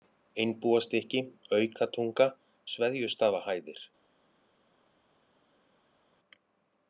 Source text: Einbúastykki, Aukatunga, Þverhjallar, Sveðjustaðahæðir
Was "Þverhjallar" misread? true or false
true